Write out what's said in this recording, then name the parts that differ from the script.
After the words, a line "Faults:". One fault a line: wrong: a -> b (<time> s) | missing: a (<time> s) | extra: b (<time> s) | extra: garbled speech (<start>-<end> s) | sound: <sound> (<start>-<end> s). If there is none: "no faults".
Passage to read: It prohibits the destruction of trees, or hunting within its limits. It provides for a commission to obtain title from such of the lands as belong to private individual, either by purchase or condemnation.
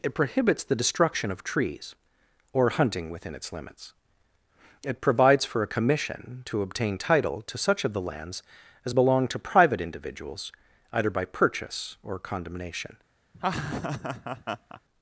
It prohibits the destruction of trees, or hunting within its limits. It provides for a commission to obtain title to such of the lands as belong to private individuals, either by purchase or condemnation.
Faults:
wrong: from -> to (7.4 s)
wrong: individual -> individuals (9.8 s)
sound: laugh (13.3-14.8 s)